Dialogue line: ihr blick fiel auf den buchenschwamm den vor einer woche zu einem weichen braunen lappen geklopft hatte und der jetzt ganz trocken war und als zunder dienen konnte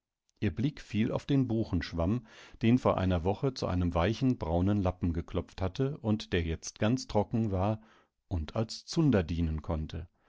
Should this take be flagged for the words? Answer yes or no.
no